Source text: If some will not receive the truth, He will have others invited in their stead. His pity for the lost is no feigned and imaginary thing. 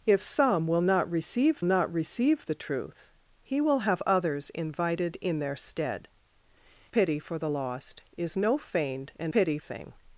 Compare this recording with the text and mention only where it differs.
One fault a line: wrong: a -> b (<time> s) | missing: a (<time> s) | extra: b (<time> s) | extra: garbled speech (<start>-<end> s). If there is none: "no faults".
extra: not receive (1.6 s)
missing: His (6.1 s)
wrong: imaginary -> pity (9.3 s)